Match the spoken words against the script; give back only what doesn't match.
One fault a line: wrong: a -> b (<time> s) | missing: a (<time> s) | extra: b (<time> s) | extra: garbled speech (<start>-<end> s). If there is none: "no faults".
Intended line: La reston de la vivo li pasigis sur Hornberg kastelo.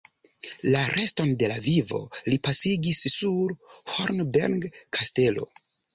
no faults